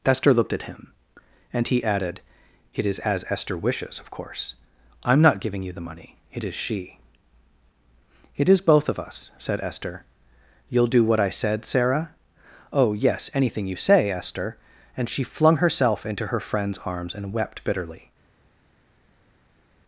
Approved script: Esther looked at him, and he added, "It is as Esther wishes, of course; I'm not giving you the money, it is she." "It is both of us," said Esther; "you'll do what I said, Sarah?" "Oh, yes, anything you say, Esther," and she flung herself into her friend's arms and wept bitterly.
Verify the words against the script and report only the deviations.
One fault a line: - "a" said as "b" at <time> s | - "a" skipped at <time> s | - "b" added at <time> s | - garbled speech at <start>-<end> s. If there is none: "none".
none